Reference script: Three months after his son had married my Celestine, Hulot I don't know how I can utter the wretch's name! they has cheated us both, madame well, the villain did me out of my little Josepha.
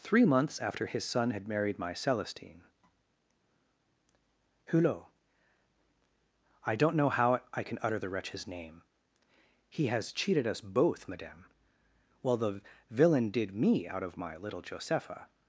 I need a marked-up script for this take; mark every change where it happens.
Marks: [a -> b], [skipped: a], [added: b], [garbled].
Three months after his son had married my Celestine, Hulot I don't know how I can utter the wretch's name! [they -> he] has cheated us both, madame well, the villain did me out of my little Josepha.